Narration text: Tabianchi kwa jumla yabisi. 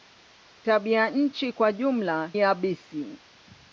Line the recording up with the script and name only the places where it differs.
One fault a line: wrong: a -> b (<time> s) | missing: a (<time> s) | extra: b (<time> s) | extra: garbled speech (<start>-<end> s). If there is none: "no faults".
no faults